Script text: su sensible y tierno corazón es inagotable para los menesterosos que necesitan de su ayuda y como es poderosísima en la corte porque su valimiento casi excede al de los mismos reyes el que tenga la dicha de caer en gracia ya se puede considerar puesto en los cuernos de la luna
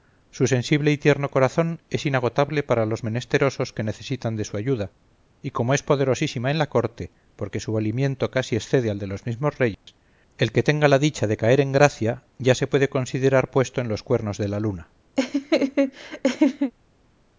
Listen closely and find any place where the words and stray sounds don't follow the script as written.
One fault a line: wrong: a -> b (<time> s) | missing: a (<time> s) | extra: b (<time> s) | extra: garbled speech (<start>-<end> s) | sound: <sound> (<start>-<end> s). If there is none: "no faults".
sound: dropout (9.7-9.9 s)
sound: laugh (15.2-16.7 s)